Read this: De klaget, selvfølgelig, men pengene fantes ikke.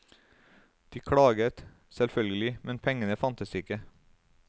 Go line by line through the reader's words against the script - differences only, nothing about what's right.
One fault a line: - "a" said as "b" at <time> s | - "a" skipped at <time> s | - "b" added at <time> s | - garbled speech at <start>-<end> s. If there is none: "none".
none